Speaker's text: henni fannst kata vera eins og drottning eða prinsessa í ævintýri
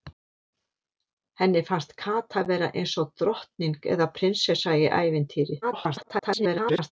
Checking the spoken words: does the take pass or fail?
fail